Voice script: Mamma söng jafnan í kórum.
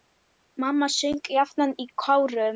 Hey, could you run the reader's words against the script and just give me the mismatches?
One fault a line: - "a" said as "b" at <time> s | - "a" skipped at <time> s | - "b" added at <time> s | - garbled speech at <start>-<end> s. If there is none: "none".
none